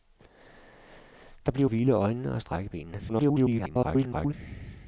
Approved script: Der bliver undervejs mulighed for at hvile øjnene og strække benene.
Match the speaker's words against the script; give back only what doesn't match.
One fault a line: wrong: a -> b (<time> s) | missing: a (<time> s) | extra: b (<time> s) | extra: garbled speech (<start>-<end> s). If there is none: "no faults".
missing: undervejs mulighed for (1.7 s)
extra: garbled speech (3.1-4.3 s)